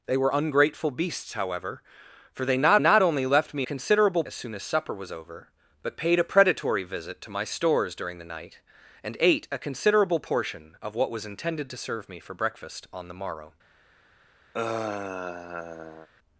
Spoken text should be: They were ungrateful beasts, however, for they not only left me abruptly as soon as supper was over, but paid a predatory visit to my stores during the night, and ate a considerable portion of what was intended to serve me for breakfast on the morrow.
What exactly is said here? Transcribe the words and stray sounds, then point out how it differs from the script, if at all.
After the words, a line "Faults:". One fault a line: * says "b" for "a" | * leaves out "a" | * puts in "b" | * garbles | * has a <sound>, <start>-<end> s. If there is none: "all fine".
They were ungrateful beasts, however, for they not not only left me considerable as soon as supper was over, but paid a predatory visit to my stores during the night, and ate a considerable portion of what was intended to serve me for breakfast on the morrow.
Faults:
* puts in "not"
* says "considerable" for "abruptly"
* has a sigh, 14.5-16.1 s